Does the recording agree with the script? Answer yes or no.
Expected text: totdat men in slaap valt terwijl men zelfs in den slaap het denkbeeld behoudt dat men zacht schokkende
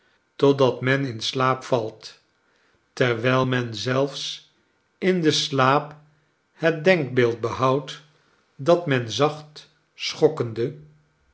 yes